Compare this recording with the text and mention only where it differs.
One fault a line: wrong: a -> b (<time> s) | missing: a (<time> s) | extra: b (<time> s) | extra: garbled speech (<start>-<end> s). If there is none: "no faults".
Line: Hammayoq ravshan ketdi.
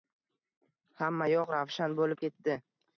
extra: bo‘lib (2.0 s)